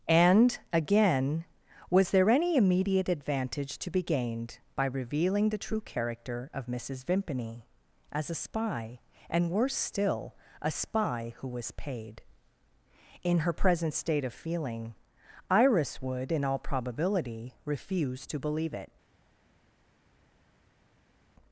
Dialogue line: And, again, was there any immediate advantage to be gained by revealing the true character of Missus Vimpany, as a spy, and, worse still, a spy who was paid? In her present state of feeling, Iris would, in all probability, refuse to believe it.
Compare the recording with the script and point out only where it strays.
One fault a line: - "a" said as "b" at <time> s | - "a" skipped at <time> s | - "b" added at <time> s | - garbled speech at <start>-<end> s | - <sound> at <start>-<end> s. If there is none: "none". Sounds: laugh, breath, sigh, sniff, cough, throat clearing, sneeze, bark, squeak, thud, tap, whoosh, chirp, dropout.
none